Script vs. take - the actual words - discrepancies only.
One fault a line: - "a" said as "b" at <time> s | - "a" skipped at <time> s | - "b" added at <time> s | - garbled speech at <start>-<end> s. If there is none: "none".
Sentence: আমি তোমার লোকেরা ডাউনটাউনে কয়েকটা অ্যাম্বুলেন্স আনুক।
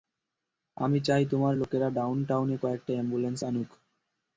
- "চাই" added at 1.1 s